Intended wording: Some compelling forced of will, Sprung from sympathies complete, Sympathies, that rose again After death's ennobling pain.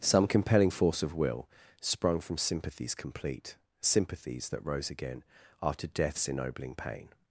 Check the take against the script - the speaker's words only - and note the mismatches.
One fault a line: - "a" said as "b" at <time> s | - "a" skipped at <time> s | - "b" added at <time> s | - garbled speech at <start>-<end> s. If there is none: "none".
- "forced" said as "force" at 0.7 s